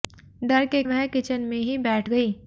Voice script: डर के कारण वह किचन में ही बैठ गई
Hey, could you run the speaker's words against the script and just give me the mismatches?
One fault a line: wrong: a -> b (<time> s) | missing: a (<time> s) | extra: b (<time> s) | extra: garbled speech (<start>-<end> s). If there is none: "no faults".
missing: कारण (0.8 s)